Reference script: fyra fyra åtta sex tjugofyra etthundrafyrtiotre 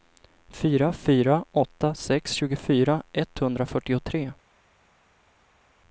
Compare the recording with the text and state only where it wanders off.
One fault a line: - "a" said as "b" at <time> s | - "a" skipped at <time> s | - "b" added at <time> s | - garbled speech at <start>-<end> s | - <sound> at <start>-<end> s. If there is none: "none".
none